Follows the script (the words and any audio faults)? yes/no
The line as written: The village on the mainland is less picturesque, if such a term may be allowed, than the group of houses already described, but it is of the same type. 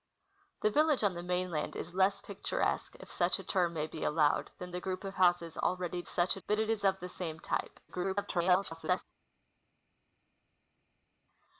no